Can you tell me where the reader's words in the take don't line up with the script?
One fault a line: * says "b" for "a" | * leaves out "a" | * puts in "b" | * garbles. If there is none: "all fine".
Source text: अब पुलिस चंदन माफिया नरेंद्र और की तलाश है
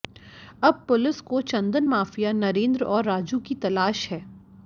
* puts in "को"
* puts in "राजू"